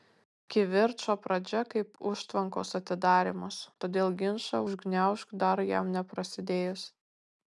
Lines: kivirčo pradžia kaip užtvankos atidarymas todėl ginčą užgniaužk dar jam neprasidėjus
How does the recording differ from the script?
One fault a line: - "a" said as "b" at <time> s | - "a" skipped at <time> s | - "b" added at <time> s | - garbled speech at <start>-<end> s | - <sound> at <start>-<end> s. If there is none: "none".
none